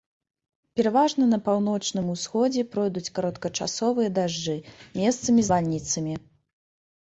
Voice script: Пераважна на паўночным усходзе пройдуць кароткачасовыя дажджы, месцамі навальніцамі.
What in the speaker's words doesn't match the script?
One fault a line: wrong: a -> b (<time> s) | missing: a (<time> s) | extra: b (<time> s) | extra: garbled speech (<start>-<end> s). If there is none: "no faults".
no faults